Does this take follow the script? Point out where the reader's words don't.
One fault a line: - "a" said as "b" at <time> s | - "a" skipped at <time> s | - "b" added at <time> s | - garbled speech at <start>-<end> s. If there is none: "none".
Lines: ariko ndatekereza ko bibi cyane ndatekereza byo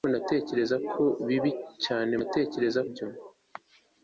none